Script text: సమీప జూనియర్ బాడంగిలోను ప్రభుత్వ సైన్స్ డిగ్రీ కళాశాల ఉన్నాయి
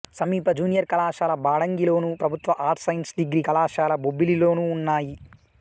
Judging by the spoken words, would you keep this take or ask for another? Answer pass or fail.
fail